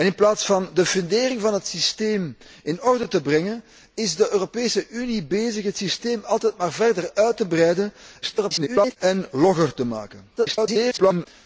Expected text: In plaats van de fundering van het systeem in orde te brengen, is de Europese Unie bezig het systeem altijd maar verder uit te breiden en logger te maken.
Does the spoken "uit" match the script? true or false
true